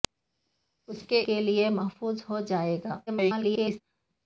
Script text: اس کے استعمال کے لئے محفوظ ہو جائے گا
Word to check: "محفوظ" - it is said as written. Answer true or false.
true